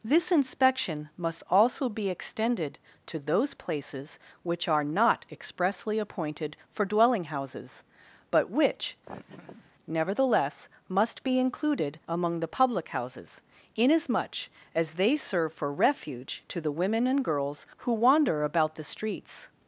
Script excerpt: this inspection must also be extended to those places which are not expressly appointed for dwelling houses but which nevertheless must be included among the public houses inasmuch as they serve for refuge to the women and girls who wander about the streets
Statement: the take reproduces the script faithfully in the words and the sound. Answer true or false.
false